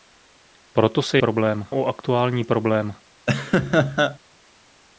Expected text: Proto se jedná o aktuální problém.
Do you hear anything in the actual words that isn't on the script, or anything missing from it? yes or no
yes